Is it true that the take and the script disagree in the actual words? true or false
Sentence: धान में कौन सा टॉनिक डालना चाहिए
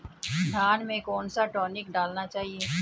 false